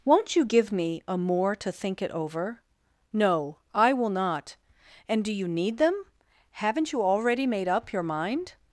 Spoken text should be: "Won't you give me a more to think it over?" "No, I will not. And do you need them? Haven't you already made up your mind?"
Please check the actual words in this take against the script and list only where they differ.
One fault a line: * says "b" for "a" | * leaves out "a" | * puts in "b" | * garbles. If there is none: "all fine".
all fine